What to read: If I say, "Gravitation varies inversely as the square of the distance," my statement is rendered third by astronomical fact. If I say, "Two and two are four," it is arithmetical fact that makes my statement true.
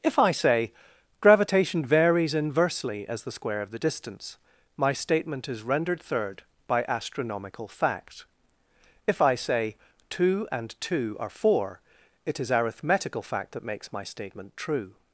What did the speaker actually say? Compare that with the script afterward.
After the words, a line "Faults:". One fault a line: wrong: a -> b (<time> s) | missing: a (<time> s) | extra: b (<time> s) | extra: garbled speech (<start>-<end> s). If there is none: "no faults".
If I say, "Gravitation varies inversely as the square of the distance," my statement is rendered third by astronomical fact. If I say, "Two and two are four," it is arithmetical fact that makes my statement true.
Faults:
no faults